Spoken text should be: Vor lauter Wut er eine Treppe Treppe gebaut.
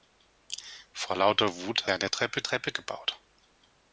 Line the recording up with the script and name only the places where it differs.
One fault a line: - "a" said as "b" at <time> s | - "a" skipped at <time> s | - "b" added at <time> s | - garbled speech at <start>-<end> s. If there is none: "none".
none